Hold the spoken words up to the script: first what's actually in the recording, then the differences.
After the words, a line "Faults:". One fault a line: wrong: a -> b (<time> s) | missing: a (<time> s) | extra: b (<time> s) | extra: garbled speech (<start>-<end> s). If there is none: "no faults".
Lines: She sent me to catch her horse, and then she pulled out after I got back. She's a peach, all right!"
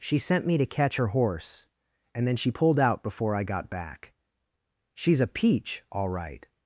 She sent me to catch her horse, and then she pulled out before I got back. She's a peach, all right!"
Faults:
wrong: after -> before (3.0 s)